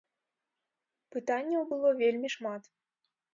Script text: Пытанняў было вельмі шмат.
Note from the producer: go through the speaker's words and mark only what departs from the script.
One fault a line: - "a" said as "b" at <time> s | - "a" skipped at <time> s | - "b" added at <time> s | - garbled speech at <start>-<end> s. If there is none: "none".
none